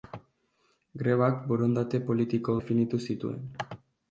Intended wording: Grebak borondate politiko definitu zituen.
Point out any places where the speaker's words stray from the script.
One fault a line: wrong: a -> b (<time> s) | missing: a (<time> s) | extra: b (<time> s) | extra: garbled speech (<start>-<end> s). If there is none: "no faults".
no faults